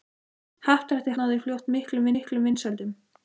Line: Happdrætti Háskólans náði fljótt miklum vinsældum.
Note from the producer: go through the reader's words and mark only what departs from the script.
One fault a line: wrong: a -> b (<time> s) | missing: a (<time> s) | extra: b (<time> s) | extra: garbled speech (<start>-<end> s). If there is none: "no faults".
missing: Háskólans (1.1 s)
extra: miklum (2.2 s)